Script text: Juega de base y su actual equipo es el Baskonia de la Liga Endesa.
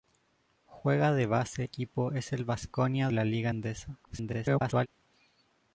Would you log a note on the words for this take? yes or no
yes